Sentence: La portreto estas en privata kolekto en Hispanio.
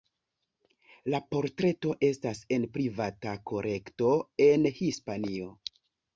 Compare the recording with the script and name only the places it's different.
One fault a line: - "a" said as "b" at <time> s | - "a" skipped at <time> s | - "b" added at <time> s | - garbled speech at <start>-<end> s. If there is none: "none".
none